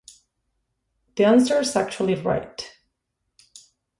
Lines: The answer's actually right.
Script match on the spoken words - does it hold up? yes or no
yes